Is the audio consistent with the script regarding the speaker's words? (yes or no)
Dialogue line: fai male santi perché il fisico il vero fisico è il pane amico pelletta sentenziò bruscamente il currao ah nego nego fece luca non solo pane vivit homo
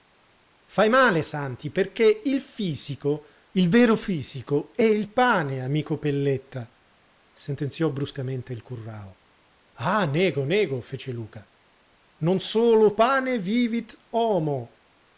yes